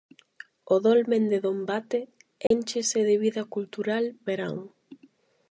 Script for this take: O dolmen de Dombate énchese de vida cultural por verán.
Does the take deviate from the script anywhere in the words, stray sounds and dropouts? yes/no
yes